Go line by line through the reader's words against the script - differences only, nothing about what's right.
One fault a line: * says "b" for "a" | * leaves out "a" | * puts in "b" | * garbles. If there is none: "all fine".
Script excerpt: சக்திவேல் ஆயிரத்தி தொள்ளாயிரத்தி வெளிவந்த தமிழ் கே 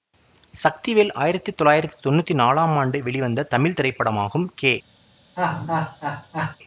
* puts in "தொன்னூத்தி நாலாம் ஆண்டு"
* puts in "திரைப்படமாகும்"